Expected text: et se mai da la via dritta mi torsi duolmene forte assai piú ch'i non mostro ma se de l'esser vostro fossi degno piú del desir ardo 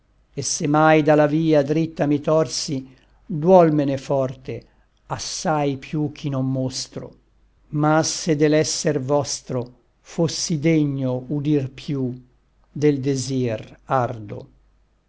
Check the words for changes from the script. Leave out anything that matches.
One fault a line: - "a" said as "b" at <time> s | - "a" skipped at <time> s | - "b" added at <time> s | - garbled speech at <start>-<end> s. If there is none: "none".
- "udir" added at 11.4 s